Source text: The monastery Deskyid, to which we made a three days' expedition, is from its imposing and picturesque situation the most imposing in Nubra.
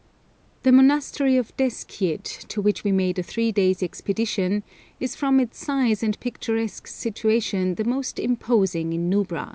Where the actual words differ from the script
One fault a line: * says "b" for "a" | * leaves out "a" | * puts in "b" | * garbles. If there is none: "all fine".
* puts in "of"
* says "size" for "imposing"